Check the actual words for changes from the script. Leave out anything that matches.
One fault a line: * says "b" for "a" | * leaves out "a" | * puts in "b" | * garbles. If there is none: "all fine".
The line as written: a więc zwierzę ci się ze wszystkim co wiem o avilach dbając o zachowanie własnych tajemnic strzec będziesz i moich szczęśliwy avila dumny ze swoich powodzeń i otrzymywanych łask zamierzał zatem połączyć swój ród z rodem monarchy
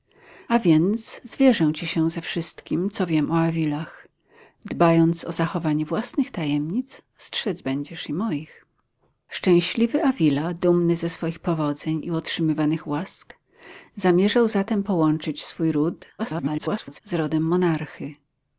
* garbles